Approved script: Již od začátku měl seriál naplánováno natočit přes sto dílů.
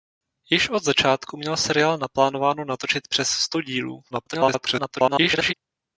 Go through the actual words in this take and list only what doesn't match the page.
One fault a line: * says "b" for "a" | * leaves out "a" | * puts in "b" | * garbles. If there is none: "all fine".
* garbles